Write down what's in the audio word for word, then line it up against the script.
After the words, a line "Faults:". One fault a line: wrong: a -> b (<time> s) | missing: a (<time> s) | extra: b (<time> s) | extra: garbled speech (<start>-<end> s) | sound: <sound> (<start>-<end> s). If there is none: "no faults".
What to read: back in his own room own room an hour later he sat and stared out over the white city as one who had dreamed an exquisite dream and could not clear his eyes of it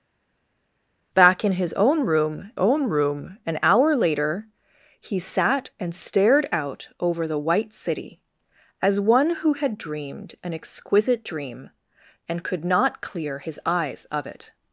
back in his own room own room an hour later he sat and stared out over the white city as one who had dreamed an exquisite dream and could not clear his eyes of it
Faults:
no faults